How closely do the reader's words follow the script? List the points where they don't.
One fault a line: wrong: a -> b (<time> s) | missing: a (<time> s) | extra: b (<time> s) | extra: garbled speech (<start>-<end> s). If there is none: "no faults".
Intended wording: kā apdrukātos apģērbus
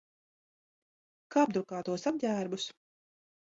no faults